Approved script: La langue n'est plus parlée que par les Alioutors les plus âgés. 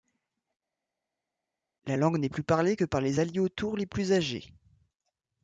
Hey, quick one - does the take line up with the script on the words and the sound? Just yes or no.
yes